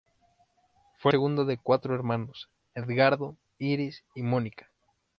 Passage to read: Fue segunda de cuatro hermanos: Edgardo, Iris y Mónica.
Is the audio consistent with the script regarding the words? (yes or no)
yes